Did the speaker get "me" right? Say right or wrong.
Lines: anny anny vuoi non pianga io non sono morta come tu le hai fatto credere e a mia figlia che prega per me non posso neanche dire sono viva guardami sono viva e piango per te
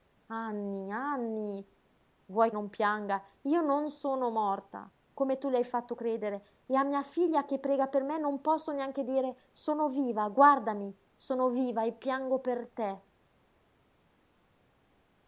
right